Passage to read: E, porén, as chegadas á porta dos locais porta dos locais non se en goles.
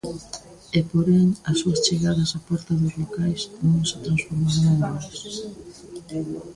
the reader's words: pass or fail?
fail